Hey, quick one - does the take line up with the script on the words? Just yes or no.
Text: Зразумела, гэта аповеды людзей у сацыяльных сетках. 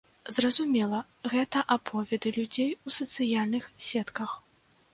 yes